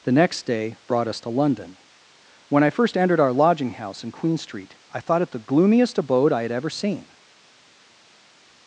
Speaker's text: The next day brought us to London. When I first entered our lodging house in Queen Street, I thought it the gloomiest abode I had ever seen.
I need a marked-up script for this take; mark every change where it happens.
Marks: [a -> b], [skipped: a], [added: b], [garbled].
The next day brought us to London. When I first entered our lodging house in Queen Street, I thought it the gloomiest abode I had ever seen.